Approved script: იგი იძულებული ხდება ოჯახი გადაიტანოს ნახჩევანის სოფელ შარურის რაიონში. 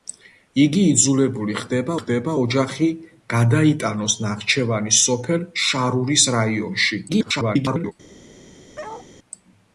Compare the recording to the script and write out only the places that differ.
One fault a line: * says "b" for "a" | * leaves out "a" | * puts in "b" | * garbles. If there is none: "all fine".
* puts in "ხდება"
* garbles